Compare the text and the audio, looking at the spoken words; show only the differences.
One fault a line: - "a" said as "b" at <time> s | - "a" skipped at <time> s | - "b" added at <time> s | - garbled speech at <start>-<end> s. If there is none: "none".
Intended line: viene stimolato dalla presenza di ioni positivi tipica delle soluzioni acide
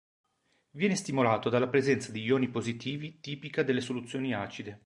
none